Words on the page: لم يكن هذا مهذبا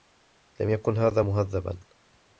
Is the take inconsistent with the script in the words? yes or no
no